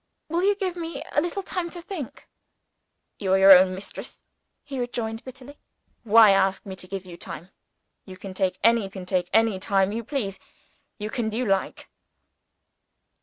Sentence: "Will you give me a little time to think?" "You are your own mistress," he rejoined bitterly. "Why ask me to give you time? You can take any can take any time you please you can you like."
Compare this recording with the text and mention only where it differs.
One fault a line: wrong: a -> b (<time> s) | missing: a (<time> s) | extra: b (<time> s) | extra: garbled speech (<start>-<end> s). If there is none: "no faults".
no faults